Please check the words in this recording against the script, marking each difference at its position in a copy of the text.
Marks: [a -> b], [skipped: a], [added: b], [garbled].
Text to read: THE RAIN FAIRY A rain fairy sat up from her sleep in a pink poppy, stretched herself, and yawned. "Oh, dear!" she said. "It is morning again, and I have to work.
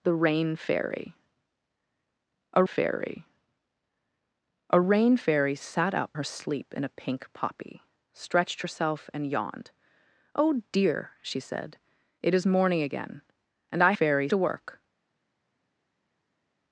THE RAIN FAIRY A [added: FAIRY A] rain fairy sat up [skipped: from] her sleep in a pink poppy, stretched herself, and yawned. "Oh, dear!" she said. "It is morning again, and I [have -> fairy] to work.